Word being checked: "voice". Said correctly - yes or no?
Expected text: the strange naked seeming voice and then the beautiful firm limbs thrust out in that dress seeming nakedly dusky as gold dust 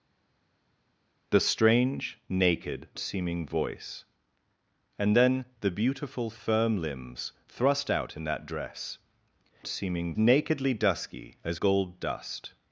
yes